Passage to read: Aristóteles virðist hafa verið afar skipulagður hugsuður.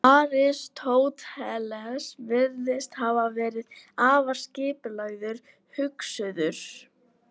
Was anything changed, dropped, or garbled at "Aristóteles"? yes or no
no